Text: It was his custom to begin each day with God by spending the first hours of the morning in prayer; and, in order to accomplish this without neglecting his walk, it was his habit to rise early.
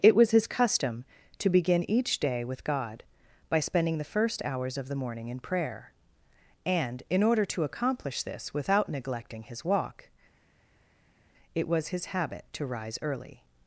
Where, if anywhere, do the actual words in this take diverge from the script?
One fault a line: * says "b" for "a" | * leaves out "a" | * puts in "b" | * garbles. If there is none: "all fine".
all fine